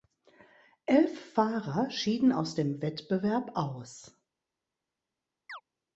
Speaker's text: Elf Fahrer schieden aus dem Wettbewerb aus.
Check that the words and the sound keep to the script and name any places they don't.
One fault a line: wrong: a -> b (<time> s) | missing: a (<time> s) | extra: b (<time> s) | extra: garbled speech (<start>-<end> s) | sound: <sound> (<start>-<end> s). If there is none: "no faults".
sound: chirp (5.5-5.6 s)